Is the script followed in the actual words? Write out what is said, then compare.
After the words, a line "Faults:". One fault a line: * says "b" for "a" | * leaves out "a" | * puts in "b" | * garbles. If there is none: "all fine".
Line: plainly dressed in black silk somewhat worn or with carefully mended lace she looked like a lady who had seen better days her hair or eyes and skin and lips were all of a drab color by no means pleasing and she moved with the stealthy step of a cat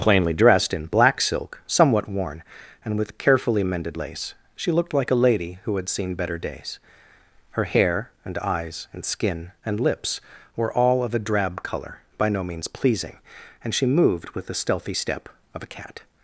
plainly dressed in black silk somewhat worn and with carefully mended lace she looked like a lady who had seen better days her hair and eyes and skin and lips were all of a drab color by no means pleasing and she moved with the stealthy step of a cat
Faults:
* says "and" for "or"
* says "and" for "or"